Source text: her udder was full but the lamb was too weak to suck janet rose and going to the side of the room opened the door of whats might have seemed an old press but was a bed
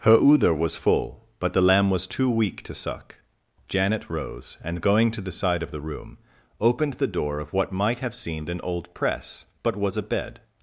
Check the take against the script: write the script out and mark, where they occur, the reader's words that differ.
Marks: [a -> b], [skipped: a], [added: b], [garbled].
her udder was full but the lamb was too weak to suck janet rose and going to the side of the room opened the door of [whats -> what] might have seemed an old press but was a bed